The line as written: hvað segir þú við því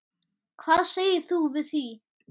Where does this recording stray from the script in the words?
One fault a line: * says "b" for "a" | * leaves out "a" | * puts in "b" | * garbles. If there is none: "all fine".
all fine